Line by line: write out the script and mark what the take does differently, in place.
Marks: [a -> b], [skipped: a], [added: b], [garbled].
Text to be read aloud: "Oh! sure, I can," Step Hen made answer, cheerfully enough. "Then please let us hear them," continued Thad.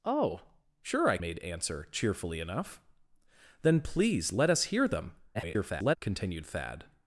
"Oh! sure, I [skipped: can," Step Hen] made answer, cheerfully enough. "Then please let us hear them," [garbled] continued Thad.